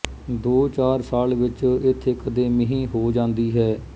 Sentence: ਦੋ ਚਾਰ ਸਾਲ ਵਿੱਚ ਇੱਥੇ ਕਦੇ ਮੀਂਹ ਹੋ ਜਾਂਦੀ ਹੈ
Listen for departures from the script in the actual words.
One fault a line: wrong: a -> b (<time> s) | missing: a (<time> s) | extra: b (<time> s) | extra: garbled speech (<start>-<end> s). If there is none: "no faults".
no faults